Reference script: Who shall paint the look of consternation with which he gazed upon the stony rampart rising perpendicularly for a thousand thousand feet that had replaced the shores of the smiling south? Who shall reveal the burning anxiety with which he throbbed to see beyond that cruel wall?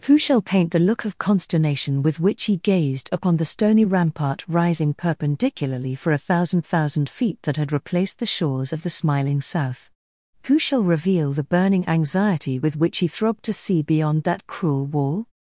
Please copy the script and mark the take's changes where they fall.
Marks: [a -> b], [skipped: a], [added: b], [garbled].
Who shall paint the look of consternation with which he gazed upon the stony rampart rising perpendicularly for a thousand thousand feet that had replaced the shores of the smiling south? Who shall reveal the burning anxiety with which he throbbed to see beyond that cruel wall?